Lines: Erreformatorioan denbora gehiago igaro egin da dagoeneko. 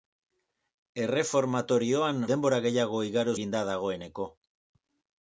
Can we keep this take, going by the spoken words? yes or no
yes